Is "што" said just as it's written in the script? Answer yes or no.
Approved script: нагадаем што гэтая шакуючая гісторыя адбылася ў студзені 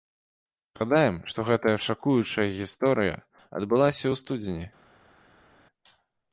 yes